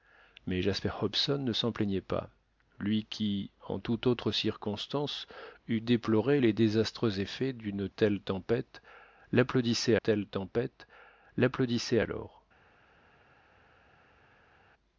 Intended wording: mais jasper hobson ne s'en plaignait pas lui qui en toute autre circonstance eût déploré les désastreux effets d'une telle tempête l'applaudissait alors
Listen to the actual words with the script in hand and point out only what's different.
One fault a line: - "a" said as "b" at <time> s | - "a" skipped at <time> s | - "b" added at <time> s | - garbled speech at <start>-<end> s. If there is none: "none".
- "telle tempête l'applaudissait" added at 9.9 s